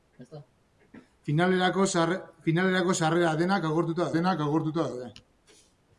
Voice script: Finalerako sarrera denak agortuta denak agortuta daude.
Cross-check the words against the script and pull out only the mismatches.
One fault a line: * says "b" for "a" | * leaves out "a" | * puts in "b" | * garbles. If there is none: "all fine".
all fine